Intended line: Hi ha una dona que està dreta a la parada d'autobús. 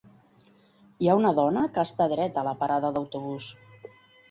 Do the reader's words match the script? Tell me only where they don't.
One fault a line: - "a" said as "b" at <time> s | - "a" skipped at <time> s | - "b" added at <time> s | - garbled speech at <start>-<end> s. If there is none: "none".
none